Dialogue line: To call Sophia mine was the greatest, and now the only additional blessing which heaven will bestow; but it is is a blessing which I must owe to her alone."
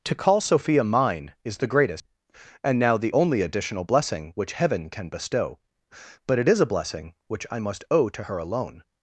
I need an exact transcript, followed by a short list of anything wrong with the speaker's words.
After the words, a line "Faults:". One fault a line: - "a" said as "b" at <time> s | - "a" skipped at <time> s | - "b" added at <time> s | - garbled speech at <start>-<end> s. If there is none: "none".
To call Sophia mine is the greatest, and now the only additional blessing which heaven can bestow; but it is a blessing which I must owe to her alone."
Faults:
- "was" said as "is" at 1.4 s
- "will" said as "can" at 4.9 s
- "is" skipped at 6.6 s